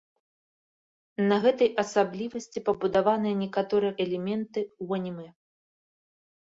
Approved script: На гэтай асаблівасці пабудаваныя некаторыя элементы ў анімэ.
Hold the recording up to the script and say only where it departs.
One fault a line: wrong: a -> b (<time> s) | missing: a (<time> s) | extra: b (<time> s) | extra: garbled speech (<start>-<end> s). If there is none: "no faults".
no faults